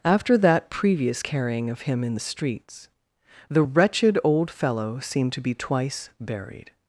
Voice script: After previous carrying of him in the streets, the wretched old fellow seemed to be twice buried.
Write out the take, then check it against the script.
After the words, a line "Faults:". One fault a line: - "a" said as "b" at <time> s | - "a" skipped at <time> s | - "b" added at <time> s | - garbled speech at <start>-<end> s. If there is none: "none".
After that previous carrying of him in the streets, the wretched old fellow seemed to be twice buried.
Faults:
- "that" added at 0.4 s